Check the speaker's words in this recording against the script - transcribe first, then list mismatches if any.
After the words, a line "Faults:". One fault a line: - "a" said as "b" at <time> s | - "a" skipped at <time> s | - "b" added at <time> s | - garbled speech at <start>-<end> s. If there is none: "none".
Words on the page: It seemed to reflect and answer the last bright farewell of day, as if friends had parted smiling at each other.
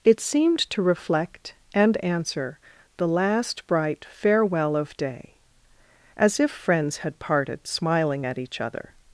It seemed to reflect and answer the last bright farewell of day, as if friends had parted smiling at each other.
Faults:
none